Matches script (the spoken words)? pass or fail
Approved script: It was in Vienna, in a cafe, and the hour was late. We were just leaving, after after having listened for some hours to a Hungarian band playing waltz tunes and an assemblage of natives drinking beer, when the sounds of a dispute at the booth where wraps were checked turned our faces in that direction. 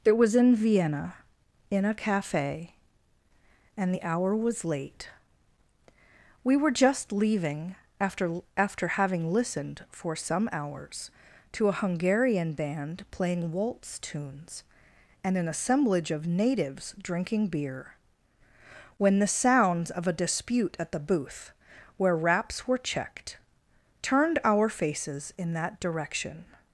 pass